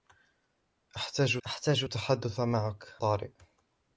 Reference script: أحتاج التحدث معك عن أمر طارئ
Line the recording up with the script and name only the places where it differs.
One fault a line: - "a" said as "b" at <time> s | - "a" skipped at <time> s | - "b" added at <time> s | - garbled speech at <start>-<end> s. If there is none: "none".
- "أحتاج" added at 1.5 s
- "عن أمر" skipped at 3.0 s